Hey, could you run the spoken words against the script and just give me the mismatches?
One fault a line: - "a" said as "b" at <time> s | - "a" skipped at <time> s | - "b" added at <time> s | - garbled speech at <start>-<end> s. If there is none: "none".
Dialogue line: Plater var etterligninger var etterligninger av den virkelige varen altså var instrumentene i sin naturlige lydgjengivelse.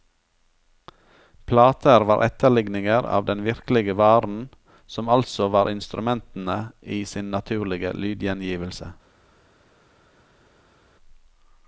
- "var etterligninger" skipped at 3.0 s
- "som" added at 4.8 s